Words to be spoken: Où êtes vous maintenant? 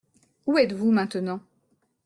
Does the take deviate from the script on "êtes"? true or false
false